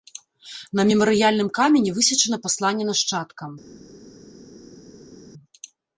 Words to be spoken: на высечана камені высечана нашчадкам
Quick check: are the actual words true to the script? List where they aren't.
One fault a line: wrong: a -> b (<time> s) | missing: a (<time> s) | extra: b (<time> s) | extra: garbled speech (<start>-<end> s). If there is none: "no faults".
wrong: высечана -> мемарыяльным (0.9 s)
extra: пасланне (2.5 s)